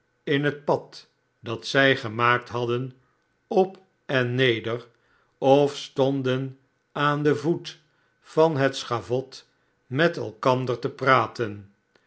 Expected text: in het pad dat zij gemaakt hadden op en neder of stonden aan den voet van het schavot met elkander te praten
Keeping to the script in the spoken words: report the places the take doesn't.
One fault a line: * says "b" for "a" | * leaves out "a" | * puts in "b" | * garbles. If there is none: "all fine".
all fine